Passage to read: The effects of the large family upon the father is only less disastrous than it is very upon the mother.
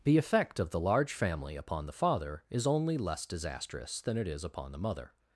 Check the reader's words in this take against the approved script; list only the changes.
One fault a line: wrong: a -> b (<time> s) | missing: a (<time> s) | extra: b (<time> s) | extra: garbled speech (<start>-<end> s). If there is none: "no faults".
wrong: effects -> effect (0.2 s)
missing: very (4.4 s)